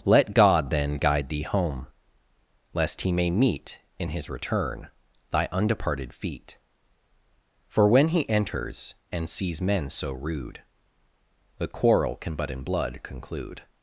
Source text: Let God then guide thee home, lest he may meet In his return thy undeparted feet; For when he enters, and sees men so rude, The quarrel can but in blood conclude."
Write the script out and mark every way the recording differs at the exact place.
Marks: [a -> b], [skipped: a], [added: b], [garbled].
Let God then guide thee home, lest he may meet In his return thy undeparted feet; For when he enters, and sees men so rude, The quarrel can but in blood conclude."